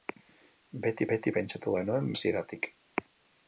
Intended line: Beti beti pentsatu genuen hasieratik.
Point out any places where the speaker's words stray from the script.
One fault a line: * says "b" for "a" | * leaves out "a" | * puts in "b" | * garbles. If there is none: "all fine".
all fine